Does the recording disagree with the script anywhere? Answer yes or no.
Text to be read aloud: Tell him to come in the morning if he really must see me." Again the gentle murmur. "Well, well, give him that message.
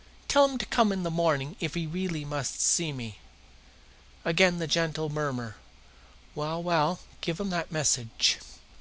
no